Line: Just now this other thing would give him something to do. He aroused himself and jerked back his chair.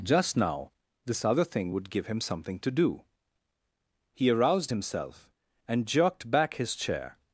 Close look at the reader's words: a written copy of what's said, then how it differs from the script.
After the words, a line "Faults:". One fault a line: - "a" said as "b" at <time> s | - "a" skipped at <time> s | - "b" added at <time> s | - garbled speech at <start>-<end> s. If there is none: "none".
Just now this other thing would give him something to do. He aroused himself and jerked back his chair.
Faults:
none